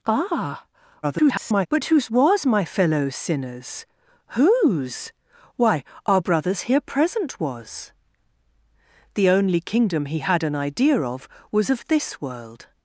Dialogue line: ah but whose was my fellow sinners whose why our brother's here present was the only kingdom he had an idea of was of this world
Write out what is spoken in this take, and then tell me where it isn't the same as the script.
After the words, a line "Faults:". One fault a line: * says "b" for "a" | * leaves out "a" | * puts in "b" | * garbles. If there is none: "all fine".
ah [garbled] but whose was my fellow sinners whose why our brother's here present was the only kingdom he had an idea of was of this world
Faults:
* garbles